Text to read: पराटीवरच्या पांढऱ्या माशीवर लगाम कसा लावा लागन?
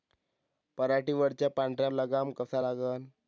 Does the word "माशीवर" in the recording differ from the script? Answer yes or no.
yes